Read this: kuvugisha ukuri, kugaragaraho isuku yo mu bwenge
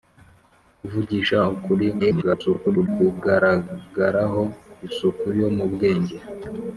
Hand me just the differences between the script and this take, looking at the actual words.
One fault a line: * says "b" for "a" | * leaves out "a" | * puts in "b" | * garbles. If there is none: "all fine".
* garbles